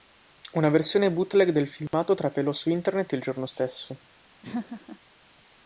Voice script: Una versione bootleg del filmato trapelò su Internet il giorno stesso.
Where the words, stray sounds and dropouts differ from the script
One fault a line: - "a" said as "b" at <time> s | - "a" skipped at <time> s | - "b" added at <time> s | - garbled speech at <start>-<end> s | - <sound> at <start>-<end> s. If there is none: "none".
- dropout at 1.9-1.9 s
- laugh at 4.4-5.0 s